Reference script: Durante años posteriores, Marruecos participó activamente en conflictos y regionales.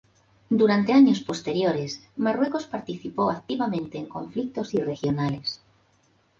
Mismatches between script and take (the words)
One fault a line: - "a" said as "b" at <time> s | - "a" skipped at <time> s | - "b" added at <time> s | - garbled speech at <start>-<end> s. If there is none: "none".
none